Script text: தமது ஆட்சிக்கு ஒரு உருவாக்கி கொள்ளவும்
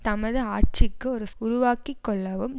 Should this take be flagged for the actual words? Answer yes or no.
no